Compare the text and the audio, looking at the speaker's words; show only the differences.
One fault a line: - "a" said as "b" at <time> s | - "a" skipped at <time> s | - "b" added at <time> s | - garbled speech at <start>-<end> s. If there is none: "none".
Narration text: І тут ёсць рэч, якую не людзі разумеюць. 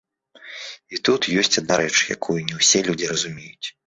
- "адна" added at 1.6 s
- "ўсе" added at 2.6 s